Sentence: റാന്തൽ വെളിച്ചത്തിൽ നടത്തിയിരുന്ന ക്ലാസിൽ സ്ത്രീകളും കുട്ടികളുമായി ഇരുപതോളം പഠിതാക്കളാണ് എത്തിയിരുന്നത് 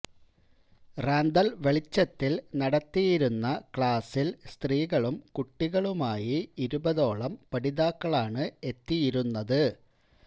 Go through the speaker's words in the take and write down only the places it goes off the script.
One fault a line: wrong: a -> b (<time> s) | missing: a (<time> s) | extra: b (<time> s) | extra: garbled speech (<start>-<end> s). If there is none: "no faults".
no faults